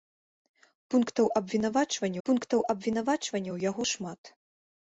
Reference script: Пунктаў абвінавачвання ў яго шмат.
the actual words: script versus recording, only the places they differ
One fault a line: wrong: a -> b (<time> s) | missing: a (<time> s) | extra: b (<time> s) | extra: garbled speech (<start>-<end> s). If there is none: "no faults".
extra: пунктаў абвінавачвання (2.3 s)